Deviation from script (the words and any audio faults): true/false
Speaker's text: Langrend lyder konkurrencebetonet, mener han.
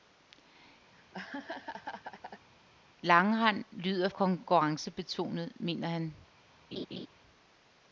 true